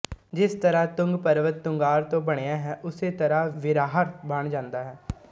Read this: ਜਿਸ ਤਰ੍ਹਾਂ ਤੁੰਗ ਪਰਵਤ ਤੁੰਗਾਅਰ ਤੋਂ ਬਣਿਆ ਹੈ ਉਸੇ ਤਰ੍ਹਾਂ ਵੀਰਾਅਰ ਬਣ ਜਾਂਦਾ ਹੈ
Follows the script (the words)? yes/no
yes